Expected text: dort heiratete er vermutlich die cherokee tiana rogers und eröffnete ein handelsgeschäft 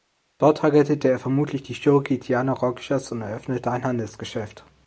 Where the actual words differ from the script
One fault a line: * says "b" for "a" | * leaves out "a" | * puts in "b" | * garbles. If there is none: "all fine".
all fine